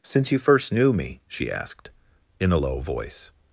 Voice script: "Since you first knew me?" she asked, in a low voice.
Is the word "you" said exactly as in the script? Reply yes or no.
yes